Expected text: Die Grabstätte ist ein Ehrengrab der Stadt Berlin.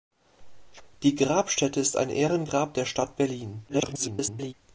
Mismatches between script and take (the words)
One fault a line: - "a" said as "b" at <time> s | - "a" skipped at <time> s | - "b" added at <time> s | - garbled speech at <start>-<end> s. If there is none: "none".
- garbled speech at 3.7-4.5 s